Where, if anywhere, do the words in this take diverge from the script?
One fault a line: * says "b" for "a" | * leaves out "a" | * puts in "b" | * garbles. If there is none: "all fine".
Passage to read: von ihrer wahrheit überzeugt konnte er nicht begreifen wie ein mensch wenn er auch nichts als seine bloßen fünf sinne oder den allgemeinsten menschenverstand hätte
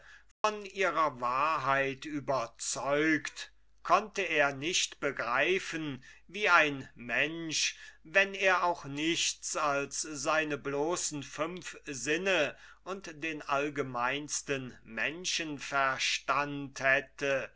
* says "und" for "oder"